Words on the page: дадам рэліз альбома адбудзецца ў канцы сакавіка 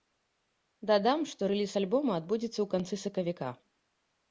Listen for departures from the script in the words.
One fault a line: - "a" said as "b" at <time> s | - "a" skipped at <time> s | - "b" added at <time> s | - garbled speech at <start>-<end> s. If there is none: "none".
- "што" added at 1.3 s